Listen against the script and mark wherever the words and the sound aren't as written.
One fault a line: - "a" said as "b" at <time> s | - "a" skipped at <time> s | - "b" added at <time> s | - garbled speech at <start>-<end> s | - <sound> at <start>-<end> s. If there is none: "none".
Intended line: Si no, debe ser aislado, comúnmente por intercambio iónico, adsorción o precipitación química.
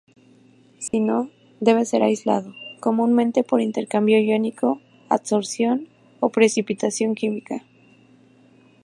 - dropout at 0.9-0.9 s